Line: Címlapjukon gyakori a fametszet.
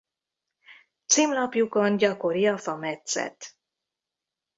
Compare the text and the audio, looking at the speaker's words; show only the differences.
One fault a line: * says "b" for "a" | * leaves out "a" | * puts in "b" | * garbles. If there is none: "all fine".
all fine